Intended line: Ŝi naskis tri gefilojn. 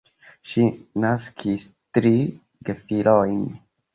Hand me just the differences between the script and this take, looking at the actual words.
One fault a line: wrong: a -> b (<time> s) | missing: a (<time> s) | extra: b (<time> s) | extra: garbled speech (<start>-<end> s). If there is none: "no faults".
no faults